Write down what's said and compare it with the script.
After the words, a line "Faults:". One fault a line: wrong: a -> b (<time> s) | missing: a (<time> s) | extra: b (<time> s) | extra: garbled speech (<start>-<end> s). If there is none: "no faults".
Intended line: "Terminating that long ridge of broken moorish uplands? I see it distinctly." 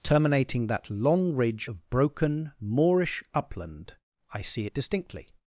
"Terminating that long ridge of broken moorish upland? I see it distinctly."
Faults:
wrong: uplands -> upland (3.3 s)